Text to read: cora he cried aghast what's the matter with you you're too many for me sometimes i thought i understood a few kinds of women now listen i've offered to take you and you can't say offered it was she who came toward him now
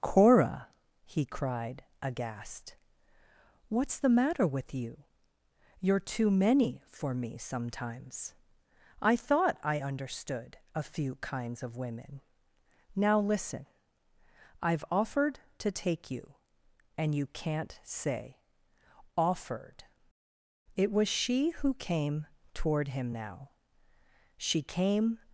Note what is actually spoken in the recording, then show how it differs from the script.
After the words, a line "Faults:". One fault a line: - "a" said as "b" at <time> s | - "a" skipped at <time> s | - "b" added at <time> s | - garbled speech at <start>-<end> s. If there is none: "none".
cora he cried aghast what's the matter with you you're too many for me sometimes i thought i understood a few kinds of women now listen i've offered to take you and you can't say offered it was she who came toward him now she came
Faults:
- "she came" added at 24.4 s